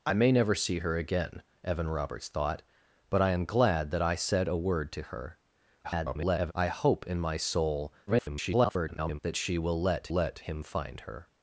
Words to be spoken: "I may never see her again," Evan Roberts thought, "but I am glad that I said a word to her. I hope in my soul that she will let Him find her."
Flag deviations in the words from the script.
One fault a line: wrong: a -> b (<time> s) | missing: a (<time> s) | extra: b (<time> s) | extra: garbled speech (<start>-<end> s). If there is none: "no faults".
extra: garbled speech (5.8-6.5 s)
extra: garbled speech (8.1-9.2 s)
extra: let (10.1 s)